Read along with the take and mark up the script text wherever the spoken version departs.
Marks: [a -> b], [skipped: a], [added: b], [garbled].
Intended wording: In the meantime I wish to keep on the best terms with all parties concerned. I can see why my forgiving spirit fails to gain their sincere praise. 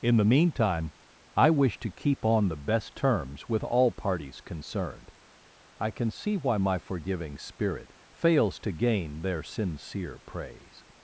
In the meantime I wish to keep on the best terms with all parties concerned. I can see why my forgiving spirit fails to gain their sincere praise.